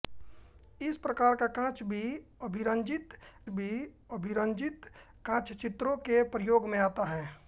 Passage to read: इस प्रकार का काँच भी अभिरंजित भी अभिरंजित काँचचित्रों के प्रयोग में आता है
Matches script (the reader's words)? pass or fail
pass